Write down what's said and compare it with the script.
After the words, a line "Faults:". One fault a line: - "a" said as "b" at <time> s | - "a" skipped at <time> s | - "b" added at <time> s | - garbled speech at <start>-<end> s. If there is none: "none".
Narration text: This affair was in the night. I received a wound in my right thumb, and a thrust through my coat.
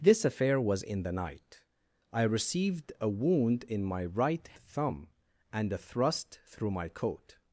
This affair was in the night. I received a wound in my right thumb, and a thrust through my coat.
Faults:
none